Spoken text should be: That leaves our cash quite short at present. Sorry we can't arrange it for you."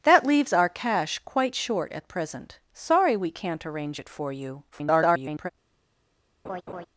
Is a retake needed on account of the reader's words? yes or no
yes